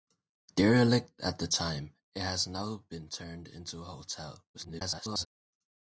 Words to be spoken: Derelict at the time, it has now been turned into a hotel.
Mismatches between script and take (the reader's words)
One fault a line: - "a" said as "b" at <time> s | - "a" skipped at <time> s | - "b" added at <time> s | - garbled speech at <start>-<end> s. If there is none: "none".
- garbled speech at 4.5-5.3 s